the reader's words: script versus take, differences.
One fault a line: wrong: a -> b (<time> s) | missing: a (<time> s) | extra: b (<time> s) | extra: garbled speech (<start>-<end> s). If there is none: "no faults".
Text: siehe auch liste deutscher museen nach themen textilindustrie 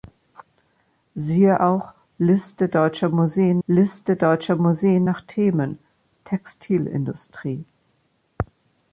extra: liste deutscher museen (3.7 s)